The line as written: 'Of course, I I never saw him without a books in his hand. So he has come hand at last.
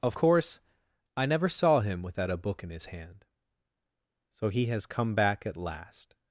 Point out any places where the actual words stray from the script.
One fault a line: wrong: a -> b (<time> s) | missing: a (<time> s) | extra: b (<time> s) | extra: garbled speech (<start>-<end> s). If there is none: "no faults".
missing: I (1.2 s)
wrong: books -> book (2.4 s)
wrong: hand -> back (5.1 s)